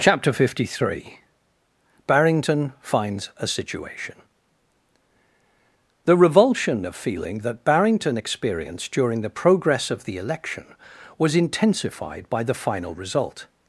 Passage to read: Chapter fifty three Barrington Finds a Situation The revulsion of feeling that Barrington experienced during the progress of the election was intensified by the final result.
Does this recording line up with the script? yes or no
yes